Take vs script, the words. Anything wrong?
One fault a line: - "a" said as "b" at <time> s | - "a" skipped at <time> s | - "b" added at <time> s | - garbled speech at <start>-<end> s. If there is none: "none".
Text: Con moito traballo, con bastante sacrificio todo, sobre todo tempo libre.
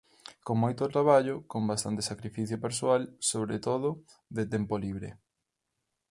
- "todo" said as "persoal" at 2.6 s
- "de" added at 4.3 s